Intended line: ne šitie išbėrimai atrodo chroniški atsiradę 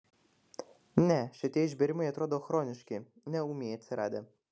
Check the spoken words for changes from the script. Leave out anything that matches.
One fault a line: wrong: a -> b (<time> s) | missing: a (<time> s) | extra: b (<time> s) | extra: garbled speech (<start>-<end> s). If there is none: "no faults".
extra: ne ūmiai (3.4 s)